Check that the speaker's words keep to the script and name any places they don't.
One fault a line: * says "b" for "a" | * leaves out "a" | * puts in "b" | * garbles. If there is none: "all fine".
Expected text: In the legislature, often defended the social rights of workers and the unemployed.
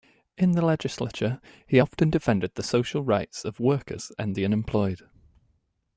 * puts in "he"